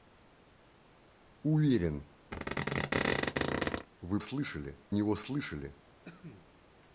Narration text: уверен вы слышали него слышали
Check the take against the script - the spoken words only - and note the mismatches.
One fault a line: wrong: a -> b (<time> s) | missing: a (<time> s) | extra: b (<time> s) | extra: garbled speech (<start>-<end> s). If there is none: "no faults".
no faults